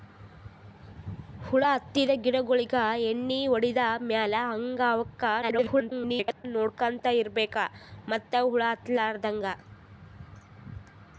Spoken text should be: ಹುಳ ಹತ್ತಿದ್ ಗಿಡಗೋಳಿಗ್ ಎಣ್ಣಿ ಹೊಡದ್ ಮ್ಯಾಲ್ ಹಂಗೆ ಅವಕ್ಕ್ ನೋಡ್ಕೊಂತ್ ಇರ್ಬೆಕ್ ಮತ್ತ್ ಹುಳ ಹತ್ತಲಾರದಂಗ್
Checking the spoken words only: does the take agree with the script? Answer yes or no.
no